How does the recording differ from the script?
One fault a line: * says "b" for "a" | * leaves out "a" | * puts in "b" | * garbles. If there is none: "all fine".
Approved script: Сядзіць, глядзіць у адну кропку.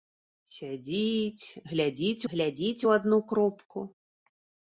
* puts in "глядзіць"